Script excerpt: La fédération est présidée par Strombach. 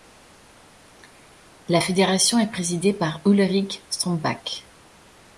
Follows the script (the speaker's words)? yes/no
no